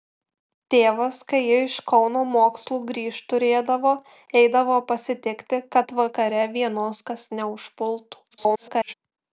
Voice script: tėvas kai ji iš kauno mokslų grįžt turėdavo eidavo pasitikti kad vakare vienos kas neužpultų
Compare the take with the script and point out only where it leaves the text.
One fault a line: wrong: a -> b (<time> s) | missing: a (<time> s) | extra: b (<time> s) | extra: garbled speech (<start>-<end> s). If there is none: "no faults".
extra: garbled speech (8.3-8.9 s)